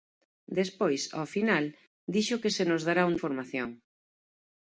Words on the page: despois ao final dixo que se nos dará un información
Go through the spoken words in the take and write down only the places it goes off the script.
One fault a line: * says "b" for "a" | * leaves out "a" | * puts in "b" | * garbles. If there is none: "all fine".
all fine